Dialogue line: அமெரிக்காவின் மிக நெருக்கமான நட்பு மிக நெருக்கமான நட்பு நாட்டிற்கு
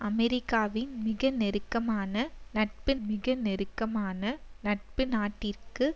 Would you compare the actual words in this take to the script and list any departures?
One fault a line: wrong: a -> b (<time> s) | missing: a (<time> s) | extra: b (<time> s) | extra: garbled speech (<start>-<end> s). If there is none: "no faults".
no faults